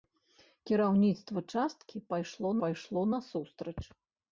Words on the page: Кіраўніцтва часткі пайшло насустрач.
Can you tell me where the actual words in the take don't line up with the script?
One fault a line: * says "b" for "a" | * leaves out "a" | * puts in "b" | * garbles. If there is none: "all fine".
* puts in "пайшло"